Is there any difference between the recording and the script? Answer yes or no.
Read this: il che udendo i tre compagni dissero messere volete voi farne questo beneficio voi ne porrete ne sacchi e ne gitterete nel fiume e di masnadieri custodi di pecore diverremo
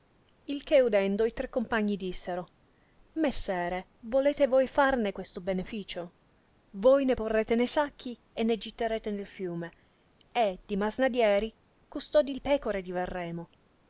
no